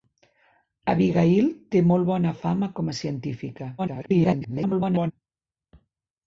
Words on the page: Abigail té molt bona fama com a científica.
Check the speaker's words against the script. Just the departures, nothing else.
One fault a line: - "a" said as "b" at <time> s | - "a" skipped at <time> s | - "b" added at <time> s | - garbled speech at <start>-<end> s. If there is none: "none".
- garbled speech at 3.8-5.1 s